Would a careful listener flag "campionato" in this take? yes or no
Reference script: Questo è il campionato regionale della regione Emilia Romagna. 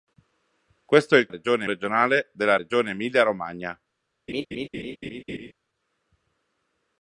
yes